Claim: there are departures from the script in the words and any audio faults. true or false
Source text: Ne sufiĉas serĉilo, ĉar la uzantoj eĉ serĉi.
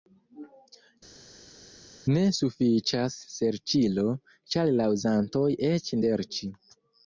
false